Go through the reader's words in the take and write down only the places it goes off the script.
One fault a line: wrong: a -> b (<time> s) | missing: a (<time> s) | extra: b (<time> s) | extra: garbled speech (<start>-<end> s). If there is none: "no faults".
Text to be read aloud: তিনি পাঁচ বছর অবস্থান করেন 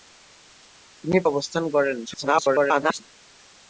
missing: পাঁচ বছর (1.2 s)
extra: garbled speech (2.1-3.0 s)